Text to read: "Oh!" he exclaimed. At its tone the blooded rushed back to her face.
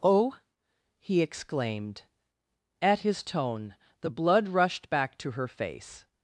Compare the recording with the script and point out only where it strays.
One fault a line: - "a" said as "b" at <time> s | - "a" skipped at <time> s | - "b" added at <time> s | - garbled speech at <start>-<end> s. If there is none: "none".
- "its" said as "his" at 3.0 s
- "blooded" said as "blood" at 4.1 s